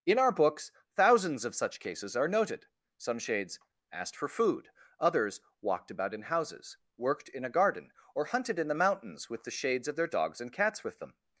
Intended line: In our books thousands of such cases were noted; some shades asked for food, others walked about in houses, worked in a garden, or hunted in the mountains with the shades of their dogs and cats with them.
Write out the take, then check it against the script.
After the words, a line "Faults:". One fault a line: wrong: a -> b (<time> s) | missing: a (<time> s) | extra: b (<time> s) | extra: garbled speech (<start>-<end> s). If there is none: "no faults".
In our books thousands of such cases are noted; some shades asked for food, others walked about in houses, worked in a garden, or hunted in the mountains with the shades of their dogs and cats with them.
Faults:
wrong: were -> are (2.1 s)